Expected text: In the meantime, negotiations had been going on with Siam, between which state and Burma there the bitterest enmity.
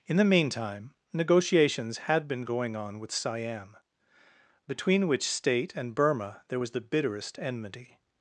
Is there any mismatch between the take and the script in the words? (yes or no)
yes